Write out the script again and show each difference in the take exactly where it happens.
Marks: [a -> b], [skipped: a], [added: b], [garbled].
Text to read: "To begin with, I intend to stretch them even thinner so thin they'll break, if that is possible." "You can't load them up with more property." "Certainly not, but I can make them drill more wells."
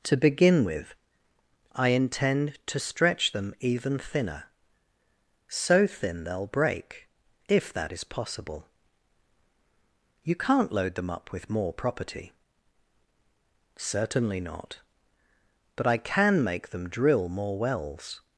"To begin with, I intend to stretch them even thinner so thin they'll break, if that is possible." "You can't load them up with more property." "Certainly not, but I can make them drill more wells."